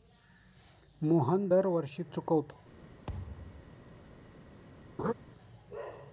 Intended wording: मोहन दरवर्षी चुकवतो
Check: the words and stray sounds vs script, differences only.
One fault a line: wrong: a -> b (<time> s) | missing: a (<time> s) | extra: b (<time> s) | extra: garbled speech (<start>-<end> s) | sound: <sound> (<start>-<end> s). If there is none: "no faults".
sound: thud (3.1-3.8 s)
sound: laugh (5.0-5.1 s)